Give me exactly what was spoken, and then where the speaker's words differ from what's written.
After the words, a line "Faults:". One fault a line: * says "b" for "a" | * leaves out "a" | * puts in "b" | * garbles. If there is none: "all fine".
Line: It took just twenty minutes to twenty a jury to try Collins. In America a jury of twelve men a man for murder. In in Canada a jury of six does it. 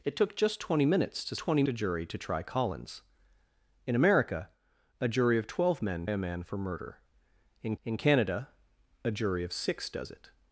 It took just twenty minutes to twenty a jury to try Collins. In America a jury of twelve men a man for murder. In in Canada a jury of six does it.
Faults:
all fine